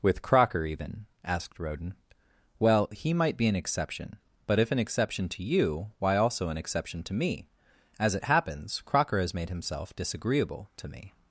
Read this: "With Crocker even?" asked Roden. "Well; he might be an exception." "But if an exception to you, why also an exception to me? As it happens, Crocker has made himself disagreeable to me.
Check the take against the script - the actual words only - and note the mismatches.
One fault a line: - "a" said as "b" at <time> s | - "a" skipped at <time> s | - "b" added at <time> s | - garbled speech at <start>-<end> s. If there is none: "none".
none